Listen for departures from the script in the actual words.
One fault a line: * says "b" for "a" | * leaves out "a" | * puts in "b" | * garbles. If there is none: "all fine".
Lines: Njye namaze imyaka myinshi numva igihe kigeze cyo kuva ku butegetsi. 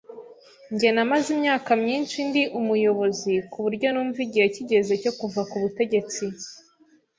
* puts in "ndi umuyobozi kuburyo"